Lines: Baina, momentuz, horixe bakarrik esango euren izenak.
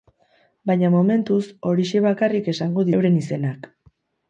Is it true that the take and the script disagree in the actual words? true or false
false